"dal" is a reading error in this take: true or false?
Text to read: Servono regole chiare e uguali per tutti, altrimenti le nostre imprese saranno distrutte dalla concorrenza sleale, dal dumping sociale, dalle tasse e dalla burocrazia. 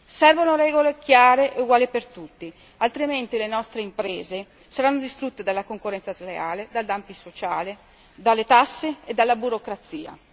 false